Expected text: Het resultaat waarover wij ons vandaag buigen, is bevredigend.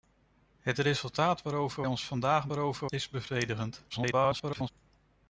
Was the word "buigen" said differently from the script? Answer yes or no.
yes